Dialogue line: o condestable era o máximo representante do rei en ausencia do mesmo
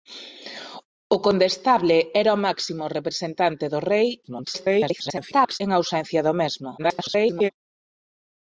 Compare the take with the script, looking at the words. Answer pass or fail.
fail